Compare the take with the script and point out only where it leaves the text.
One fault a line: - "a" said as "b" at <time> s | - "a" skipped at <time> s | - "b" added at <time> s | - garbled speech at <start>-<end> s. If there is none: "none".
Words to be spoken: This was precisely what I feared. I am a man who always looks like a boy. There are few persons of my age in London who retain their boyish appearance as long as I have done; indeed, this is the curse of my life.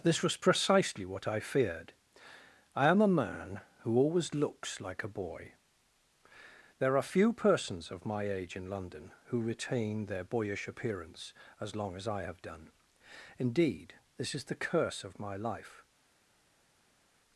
none